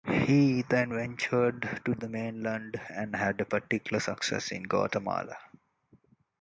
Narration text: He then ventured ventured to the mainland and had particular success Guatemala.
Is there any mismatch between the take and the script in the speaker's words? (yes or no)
yes